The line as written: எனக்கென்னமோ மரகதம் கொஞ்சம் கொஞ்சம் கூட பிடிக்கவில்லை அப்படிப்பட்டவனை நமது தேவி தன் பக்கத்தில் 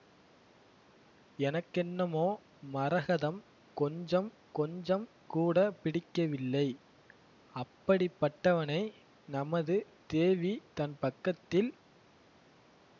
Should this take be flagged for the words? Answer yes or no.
no